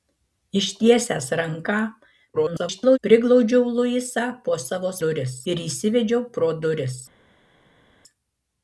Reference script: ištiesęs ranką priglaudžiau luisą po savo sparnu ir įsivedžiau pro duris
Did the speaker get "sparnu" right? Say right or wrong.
wrong